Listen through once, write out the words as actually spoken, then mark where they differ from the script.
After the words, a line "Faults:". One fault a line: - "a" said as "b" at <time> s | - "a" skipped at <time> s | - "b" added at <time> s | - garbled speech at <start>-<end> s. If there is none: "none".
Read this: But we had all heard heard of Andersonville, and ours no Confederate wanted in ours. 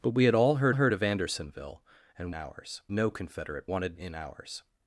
But we had all heard heard of Andersonville, and ours no Confederate wanted in ours.
Faults:
none